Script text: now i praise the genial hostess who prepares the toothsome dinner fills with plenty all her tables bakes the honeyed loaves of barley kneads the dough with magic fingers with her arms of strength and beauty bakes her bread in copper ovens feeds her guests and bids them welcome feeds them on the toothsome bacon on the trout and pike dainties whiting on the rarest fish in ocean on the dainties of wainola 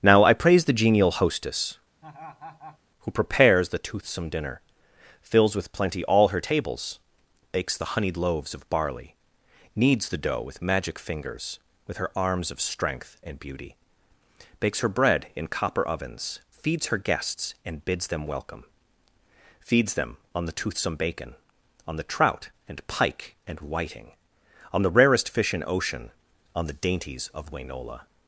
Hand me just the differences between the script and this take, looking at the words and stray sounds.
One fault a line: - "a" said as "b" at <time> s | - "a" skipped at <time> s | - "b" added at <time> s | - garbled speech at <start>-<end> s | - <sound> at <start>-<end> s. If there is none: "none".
- laugh at 2.0-2.8 s
- "dainties" said as "and" at 23.5 s